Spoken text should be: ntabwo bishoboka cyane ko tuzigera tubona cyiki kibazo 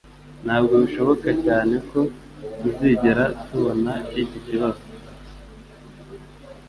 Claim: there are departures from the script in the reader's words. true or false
false